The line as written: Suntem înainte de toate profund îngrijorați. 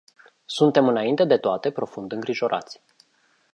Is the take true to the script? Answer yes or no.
yes